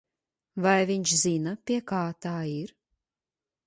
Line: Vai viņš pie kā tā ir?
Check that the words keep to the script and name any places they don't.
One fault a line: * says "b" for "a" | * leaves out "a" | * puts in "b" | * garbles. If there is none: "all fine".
* puts in "zina"